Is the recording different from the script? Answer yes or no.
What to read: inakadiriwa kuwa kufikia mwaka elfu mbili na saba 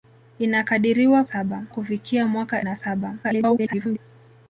yes